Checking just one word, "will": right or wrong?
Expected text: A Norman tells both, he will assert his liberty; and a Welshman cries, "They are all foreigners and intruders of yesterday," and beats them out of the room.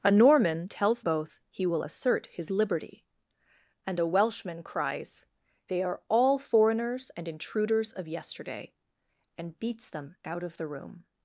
right